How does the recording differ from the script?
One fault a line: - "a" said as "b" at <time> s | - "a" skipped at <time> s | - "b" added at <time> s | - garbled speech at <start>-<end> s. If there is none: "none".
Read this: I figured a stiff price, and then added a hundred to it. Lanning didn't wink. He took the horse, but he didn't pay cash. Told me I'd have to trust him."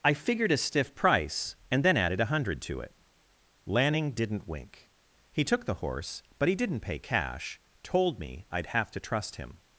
none